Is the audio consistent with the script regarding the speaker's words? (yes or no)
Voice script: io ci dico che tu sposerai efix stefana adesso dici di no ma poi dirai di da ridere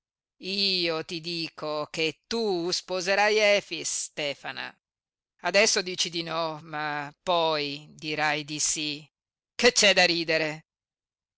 no